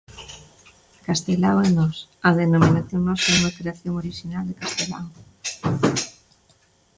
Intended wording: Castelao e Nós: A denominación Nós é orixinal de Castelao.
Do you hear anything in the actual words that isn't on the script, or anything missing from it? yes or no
yes